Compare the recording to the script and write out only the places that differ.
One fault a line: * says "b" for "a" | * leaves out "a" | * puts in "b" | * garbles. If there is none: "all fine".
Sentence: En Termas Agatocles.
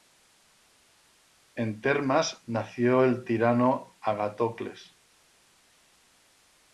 * puts in "nació el tirano"